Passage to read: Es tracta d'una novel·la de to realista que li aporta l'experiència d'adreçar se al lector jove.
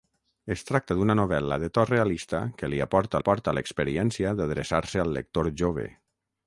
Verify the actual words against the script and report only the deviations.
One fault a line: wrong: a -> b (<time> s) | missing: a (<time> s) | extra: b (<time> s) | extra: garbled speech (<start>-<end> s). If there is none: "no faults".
extra: aporta (3.2 s)